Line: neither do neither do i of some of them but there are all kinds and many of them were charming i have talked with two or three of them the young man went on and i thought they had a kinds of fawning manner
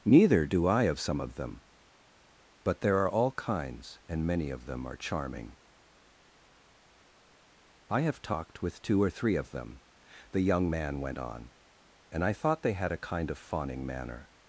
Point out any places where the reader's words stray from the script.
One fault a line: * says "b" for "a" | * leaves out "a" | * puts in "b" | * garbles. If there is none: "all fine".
* leaves out "neither do"
* says "are" for "were"
* says "kind" for "kinds"